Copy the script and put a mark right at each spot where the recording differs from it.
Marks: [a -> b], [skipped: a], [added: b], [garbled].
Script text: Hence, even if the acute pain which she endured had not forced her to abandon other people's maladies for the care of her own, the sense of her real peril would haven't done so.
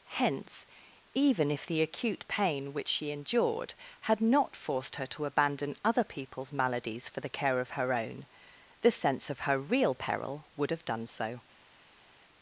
Hence, even if the acute pain which she endured had not forced her to abandon other people's maladies for the care of her own, the sense of her real peril would [haven't -> have] done so.